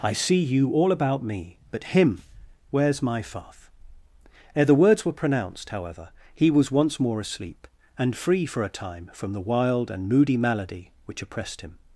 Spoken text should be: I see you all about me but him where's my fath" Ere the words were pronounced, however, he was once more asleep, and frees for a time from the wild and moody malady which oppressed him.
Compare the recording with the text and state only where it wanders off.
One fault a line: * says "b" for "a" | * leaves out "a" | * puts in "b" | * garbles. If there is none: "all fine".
* says "free" for "frees"